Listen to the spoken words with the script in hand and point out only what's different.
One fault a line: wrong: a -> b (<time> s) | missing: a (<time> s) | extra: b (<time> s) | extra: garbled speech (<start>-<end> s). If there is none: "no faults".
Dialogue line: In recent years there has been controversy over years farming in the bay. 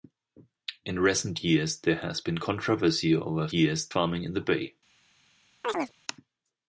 no faults